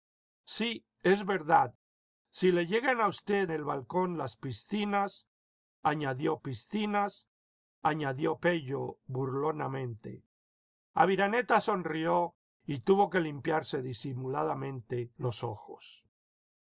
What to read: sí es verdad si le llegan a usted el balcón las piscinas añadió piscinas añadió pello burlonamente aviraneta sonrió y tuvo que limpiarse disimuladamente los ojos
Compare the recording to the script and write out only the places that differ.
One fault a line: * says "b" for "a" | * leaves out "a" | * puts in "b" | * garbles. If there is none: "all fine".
all fine